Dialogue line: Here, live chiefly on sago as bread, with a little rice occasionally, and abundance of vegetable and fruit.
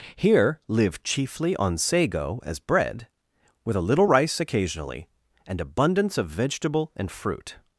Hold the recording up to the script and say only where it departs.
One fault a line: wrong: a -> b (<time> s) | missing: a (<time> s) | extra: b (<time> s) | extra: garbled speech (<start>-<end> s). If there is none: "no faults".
no faults